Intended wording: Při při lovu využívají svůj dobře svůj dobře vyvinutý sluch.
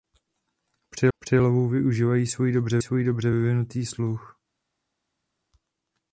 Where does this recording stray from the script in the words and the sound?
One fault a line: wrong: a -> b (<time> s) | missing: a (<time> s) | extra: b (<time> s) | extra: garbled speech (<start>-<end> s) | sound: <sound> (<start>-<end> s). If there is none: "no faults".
no faults